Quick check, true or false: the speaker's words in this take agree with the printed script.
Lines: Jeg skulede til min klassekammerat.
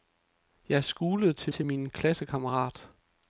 false